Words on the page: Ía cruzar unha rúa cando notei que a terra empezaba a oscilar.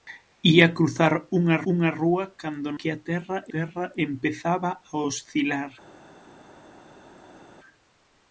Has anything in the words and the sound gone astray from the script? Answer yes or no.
yes